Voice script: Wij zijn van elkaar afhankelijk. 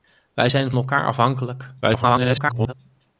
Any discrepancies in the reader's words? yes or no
yes